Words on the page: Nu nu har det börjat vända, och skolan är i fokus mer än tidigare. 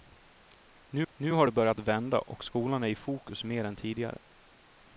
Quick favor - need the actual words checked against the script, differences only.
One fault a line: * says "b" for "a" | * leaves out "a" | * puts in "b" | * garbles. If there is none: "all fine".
all fine